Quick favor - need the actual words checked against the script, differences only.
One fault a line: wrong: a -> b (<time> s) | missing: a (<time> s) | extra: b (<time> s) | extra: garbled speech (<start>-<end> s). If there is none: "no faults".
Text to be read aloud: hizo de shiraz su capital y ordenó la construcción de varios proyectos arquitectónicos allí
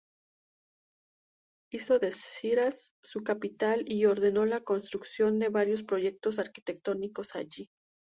no faults